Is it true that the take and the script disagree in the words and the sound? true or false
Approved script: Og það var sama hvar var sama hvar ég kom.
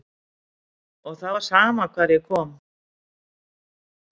true